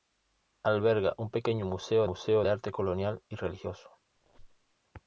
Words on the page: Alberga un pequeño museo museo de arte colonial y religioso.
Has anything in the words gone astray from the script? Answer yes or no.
no